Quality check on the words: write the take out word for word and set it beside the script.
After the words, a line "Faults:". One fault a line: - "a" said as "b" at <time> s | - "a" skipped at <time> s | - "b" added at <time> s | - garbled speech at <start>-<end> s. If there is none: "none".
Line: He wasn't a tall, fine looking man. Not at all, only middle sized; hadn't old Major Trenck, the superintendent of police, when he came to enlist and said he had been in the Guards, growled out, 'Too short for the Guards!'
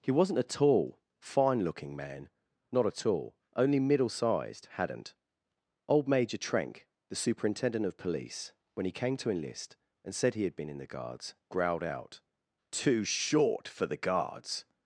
He wasn't a tall, fine looking man. Not at all, only middle sized; hadn't old Major Trenck, the superintendent of police, when he came to enlist and said he had been in the Guards, growled out, 'Too short for the Guards!'
Faults:
none